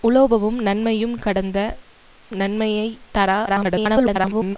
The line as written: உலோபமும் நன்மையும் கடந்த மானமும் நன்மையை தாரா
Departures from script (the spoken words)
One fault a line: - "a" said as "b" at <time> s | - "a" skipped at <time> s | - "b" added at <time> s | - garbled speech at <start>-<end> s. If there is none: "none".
- "மானமும்" skipped at 1.6 s
- garbled speech at 3.5-4.6 s